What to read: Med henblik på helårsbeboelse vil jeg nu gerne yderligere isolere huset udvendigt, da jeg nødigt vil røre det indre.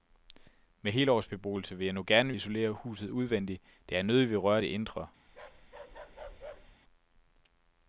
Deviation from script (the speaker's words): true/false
true